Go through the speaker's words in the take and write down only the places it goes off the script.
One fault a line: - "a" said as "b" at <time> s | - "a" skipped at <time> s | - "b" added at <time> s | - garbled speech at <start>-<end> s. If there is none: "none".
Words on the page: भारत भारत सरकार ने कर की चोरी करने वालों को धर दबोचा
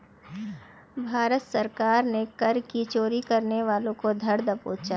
- "भारत" skipped at 1.4 s